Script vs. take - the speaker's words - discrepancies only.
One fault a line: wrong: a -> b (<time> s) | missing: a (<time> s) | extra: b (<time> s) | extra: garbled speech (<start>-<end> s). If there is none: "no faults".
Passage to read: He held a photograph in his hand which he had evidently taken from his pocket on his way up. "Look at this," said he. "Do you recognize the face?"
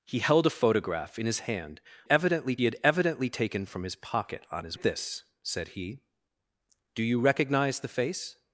wrong: which -> evidently (2.1 s)
missing: way up Look (4.8 s)